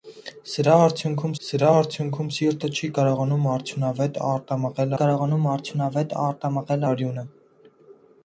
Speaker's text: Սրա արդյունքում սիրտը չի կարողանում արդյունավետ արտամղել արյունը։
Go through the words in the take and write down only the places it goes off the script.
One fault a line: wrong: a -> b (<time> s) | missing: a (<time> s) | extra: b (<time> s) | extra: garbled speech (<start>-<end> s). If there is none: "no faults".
extra: սրա արդյունքում (1.5 s)
extra: կարողանում արդյունավետ արտամղել (5.0 s)